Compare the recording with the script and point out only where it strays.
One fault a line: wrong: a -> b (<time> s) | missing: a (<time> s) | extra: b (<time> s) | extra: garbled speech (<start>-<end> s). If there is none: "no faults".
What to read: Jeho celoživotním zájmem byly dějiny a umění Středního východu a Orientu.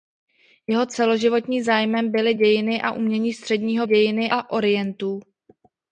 wrong: východu -> dějiny (3.8 s)